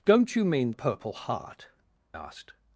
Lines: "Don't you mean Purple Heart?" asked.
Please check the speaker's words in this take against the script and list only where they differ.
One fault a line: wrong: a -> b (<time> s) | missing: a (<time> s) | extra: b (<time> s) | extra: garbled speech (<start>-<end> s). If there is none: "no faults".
no faults